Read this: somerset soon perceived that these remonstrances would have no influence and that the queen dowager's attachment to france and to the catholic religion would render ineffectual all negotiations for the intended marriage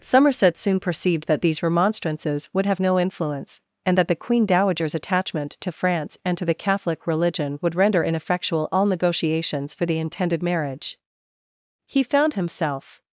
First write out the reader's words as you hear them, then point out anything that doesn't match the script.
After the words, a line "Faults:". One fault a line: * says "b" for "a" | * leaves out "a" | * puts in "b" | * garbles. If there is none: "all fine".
somerset soon perceived that these remonstrances would have no influence and that the queen dowager's attachment to france and to the catholic religion would render ineffectual all negotiations for the intended marriage he found himself
Faults:
* puts in "he found himself"